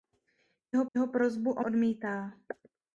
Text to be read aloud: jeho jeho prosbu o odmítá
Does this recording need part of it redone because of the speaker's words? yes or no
no